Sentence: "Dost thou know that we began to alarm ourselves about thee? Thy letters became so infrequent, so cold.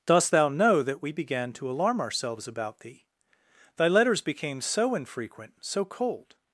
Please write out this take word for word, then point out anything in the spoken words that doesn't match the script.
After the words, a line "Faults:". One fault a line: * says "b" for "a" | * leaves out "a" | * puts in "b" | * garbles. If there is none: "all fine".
"Dost thou know that we began to alarm ourselves about thee? Thy letters became so infrequent, so cold.
Faults:
all fine